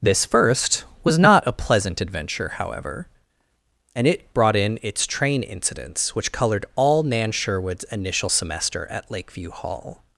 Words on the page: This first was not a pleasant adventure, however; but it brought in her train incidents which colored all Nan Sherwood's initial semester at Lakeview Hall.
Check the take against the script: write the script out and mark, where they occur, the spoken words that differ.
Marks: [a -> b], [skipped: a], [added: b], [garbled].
This first was not a pleasant adventure, however; [but -> and] it brought in [her -> its] train incidents which colored all Nan Sherwood's initial semester at Lakeview Hall.